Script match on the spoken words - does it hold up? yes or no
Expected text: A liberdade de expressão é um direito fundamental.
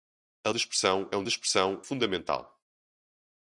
no